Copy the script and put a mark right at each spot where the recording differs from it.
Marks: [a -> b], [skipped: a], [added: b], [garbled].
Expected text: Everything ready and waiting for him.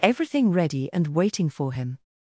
Everything ready and waiting for him.